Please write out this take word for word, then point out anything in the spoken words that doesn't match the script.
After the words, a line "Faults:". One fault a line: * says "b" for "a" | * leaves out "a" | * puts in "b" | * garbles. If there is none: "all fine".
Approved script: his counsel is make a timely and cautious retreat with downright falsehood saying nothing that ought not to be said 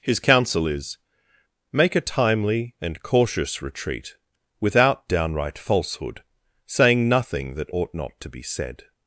his counsel is make a timely and cautious retreat without downright falsehood saying nothing that ought not to be said
Faults:
* says "without" for "with"